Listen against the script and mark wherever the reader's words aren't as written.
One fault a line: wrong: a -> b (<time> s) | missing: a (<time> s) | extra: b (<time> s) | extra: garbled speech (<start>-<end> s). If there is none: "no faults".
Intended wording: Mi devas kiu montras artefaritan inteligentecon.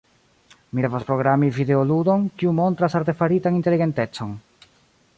extra: programi videoludon (1.1 s)